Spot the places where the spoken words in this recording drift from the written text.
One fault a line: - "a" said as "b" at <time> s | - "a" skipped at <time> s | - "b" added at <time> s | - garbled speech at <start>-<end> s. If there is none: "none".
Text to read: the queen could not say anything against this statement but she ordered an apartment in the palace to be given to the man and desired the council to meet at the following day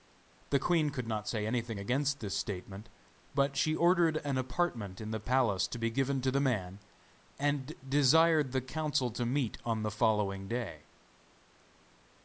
- "at" said as "on" at 9.6 s